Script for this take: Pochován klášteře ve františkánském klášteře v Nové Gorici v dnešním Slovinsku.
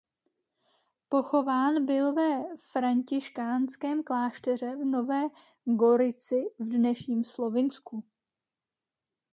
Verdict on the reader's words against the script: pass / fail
fail